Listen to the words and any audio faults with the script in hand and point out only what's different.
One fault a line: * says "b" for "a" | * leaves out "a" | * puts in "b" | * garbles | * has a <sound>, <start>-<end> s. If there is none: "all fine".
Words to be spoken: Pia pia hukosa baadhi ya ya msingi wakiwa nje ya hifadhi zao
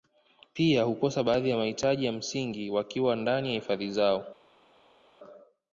* leaves out "pia"
* puts in "mahitaji"
* says "ndani" for "nje"